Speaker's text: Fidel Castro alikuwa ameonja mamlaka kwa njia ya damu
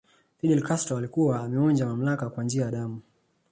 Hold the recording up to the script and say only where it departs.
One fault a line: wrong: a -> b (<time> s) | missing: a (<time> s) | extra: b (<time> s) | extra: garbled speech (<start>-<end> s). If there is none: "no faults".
no faults